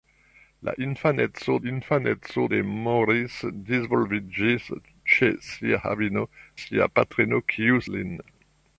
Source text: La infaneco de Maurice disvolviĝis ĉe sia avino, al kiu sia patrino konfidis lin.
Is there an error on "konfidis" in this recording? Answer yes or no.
yes